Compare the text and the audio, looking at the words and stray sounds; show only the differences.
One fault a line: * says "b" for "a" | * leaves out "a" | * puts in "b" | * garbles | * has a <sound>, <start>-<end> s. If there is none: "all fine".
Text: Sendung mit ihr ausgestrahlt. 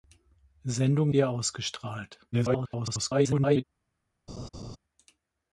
* leaves out "mit"
* garbles
* has a laugh, 4.3-4.8 s